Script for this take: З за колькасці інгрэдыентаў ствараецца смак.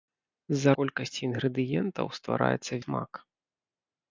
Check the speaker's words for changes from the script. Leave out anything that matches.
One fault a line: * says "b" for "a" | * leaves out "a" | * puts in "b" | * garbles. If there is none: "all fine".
all fine